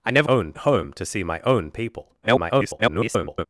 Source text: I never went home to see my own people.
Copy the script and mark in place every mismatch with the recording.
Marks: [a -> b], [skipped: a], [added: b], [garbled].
I never [went -> own] home to see my own people. [garbled]